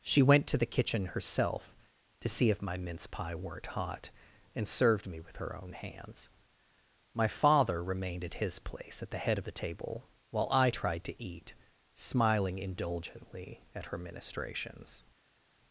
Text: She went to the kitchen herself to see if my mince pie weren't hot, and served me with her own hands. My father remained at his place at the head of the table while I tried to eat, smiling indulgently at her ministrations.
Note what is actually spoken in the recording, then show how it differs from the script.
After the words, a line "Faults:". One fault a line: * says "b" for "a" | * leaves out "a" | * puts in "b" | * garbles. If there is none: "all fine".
She went to the kitchen herself to see if my mince pie weren't hot, and served me with her own hands. My father remained at his place at the head of the table while I tried to eat, smiling indulgently at her ministrations.
Faults:
all fine